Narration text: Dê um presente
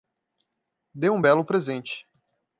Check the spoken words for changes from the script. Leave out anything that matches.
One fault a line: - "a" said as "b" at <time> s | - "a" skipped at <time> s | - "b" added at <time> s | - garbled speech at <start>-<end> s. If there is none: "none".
- "belo" added at 1.2 s